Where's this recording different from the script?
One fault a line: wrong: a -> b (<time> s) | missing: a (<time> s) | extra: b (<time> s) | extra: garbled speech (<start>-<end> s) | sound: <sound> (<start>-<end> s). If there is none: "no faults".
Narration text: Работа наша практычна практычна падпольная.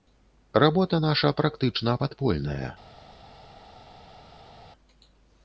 missing: практычна (2.0 s)